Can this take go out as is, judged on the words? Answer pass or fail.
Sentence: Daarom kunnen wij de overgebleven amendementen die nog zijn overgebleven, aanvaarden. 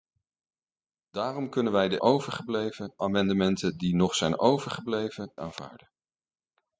pass